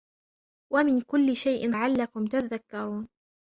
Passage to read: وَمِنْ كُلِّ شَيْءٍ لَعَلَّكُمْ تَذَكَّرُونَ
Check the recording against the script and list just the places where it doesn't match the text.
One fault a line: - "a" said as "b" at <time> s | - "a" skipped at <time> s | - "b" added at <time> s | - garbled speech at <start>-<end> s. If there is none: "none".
none